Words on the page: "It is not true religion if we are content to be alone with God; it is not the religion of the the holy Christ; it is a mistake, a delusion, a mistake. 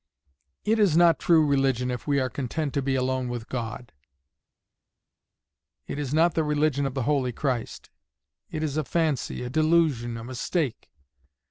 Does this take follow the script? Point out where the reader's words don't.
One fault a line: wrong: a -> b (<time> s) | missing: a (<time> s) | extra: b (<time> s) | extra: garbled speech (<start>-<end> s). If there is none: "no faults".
missing: the (7.0 s)
wrong: mistake -> fancy (8.8 s)